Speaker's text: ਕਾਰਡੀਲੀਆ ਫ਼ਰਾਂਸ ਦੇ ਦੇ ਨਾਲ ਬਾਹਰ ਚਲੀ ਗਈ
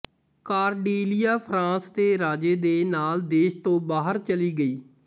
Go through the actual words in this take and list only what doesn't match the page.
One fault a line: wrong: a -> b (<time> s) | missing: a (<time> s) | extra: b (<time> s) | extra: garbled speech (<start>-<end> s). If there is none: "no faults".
extra: ਰਾਜੇ (2.2 s)
extra: ਦੇਸ਼ ਤੋਂ (3.3 s)